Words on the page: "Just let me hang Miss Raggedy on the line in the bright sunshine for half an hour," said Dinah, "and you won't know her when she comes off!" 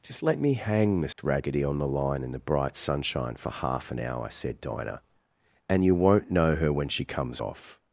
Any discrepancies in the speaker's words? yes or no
no